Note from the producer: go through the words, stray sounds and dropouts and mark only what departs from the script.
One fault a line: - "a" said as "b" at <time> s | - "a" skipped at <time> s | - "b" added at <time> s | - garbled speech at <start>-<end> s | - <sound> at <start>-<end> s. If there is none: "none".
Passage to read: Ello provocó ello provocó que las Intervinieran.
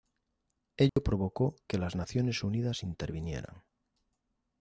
- dropout at 0.9-1.0 s
- "ello provocó que las" said as "que las Naciones Unidas" at 1.7 s